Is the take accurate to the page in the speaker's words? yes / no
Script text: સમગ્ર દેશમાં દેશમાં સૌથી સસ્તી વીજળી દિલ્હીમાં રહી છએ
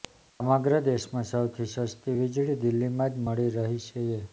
no